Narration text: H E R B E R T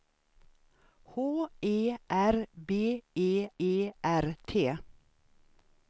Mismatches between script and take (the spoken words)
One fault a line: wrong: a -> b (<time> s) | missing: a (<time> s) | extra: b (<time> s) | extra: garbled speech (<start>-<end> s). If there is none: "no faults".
extra: E (3.6 s)